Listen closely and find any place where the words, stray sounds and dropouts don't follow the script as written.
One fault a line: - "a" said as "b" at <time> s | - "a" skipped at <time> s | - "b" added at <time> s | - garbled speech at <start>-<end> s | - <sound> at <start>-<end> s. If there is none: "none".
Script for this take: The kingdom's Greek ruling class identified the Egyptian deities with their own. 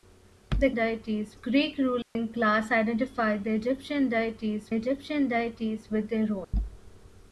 - "kingdom's" said as "deities" at 0.7 s
- dropout at 2.0-2.2 s
- "Egyptian deities" added at 4.7 s
- dropout at 6.4-6.5 s